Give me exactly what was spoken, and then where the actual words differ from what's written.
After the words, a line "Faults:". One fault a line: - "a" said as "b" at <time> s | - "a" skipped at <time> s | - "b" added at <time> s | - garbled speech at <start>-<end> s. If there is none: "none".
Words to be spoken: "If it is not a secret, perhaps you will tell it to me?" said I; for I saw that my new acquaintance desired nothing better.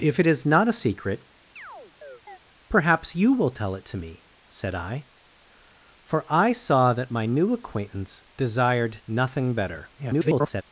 "If it is not a secret, perhaps you will tell it to me?" said I; for I saw that my new acquaintance desired nothing better. [garbled]
Faults:
- garbled speech at 10.0-10.6 s